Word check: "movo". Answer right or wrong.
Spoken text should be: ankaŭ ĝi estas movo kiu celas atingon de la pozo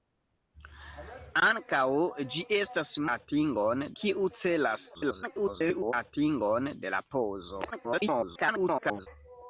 wrong